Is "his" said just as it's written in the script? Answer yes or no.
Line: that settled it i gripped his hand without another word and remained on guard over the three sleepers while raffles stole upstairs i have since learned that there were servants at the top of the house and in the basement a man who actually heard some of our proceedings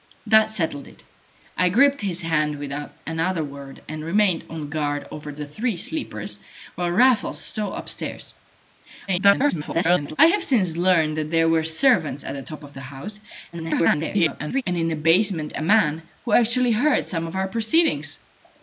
yes